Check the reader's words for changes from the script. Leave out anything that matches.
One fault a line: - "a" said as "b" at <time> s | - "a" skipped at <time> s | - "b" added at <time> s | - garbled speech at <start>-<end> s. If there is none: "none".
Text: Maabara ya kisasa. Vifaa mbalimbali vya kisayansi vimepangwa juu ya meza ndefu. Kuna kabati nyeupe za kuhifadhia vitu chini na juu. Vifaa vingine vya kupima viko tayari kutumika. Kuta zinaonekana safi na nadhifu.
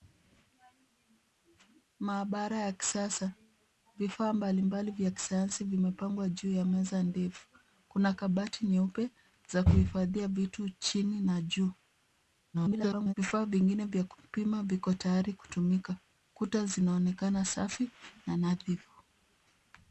- garbled speech at 12.5-13.1 s